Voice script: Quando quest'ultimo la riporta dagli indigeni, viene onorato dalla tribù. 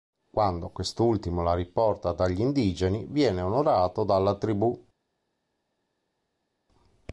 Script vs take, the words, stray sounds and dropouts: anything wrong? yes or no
no